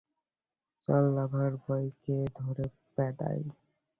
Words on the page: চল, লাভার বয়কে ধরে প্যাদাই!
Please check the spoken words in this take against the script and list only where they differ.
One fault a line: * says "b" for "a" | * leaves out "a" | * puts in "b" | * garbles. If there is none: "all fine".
all fine